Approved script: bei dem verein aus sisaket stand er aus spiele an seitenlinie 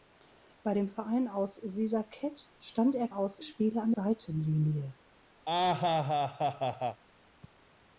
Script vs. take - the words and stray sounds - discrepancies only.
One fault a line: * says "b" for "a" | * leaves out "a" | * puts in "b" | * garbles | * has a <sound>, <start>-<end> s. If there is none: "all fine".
* has a laugh, 5.5-7.0 s